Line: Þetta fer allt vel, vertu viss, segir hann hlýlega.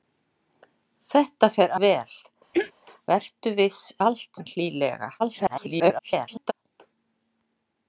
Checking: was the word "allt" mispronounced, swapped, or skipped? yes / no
yes